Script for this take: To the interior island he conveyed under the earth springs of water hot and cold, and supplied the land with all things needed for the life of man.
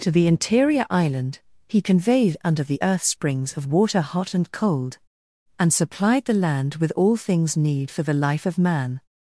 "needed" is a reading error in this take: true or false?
true